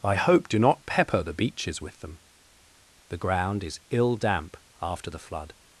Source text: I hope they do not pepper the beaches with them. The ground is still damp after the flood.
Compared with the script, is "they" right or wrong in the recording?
wrong